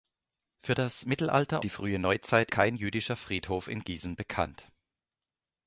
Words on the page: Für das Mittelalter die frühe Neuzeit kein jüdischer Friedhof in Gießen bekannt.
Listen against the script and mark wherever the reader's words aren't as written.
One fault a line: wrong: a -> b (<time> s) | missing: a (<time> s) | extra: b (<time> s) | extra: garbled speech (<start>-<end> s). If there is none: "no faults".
no faults